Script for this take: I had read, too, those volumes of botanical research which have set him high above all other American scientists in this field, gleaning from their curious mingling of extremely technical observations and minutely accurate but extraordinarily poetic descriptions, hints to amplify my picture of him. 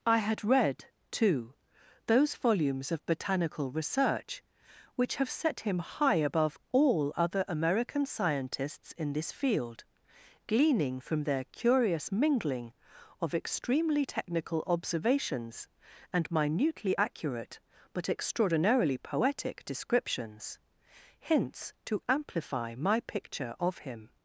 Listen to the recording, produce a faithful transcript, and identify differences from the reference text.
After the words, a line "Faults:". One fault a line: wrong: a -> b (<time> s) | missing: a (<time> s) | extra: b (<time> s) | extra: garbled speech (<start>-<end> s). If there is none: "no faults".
I had read, too, those volumes of botanical research which have set him high above all other American scientists in this field, gleaning from their curious mingling of extremely technical observations and minutely accurate but extraordinarily poetic descriptions, hints to amplify my picture of him.
Faults:
no faults